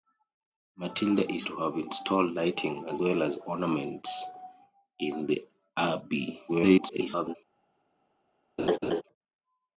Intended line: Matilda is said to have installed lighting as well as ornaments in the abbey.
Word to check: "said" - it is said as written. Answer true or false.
false